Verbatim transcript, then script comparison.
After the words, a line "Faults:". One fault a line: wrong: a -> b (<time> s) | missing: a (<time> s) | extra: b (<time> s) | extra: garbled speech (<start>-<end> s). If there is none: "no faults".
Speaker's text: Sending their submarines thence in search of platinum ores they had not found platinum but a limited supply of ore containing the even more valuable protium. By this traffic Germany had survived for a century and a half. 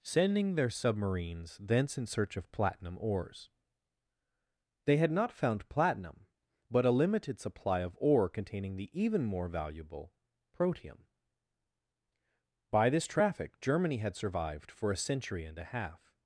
Sending their submarines thence in search of platinum ores they had not found platinum but a limited supply of ore containing the even more valuable protium. By this traffic Germany had survived for a century and a half.
Faults:
no faults